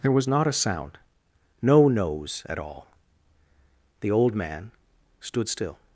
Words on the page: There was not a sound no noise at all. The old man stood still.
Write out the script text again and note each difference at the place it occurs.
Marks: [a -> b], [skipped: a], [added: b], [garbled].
There was not a sound no [noise -> nose] at all. The old man stood still.